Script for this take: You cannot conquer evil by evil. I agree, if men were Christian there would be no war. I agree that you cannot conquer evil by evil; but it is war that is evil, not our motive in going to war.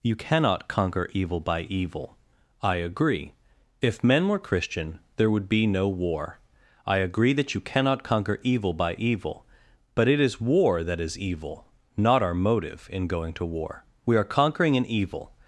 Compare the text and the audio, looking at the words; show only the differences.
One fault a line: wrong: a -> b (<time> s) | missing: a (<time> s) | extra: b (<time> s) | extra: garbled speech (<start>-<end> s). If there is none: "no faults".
extra: We are conquering an evil (14.0 s)